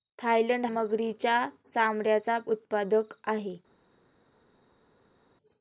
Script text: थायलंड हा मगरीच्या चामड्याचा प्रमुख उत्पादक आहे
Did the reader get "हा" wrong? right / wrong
wrong